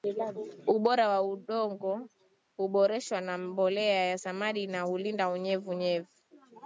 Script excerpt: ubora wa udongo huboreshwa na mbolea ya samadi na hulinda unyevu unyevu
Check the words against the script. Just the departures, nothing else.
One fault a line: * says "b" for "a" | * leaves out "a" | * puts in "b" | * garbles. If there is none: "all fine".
all fine